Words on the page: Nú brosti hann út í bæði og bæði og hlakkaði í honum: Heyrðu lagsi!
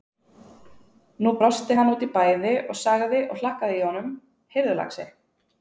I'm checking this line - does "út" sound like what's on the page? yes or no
yes